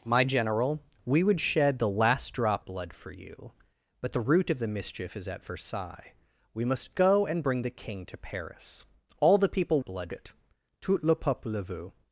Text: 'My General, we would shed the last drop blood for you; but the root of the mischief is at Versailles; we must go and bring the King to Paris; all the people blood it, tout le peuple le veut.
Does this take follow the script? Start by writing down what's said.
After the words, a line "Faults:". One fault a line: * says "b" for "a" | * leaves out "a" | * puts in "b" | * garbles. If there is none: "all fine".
'My General, we would shed the last drop blood for you; but the root of the mischief is at Versailles; we must go and bring the King to Paris; all the people blood it, tout le peuple le veut.
Faults:
all fine